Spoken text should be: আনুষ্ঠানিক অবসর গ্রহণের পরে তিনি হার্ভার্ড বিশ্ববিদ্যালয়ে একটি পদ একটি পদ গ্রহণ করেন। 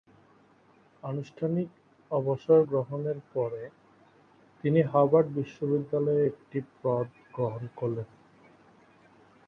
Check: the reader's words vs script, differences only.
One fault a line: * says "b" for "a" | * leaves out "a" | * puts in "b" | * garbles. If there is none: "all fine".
* leaves out "একটি পদ"